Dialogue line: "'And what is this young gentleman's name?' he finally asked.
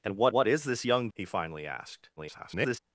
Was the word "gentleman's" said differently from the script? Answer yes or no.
yes